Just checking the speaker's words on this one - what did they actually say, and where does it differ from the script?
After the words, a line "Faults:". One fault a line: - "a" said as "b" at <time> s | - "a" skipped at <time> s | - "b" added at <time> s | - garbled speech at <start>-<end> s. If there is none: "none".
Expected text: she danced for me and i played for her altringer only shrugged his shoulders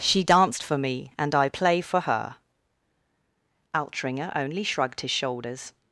she danced for me and i play for her altringer only shrugged his shoulders
Faults:
- "played" said as "play" at 1.4 s